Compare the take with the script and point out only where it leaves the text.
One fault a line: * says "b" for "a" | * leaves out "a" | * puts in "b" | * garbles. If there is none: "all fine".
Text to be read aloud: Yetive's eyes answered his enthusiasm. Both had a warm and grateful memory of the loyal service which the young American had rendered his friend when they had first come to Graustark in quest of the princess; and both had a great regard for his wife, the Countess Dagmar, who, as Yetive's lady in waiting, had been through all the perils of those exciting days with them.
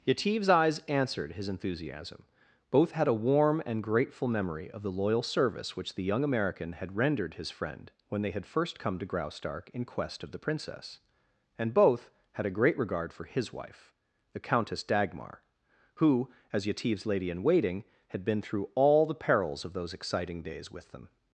all fine